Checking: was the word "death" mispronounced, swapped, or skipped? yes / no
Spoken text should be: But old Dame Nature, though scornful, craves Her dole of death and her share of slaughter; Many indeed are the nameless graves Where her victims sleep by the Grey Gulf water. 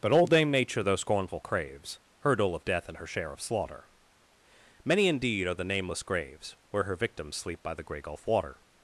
no